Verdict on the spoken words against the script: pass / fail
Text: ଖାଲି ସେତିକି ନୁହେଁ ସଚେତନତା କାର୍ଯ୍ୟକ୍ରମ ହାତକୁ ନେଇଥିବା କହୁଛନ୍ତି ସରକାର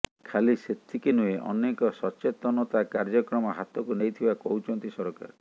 fail